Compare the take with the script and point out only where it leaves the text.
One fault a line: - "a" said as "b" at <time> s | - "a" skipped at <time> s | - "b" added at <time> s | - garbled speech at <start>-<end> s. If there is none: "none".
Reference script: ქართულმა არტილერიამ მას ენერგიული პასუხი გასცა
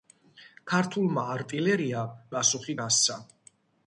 - "მას ენერგიული" skipped at 2.2 s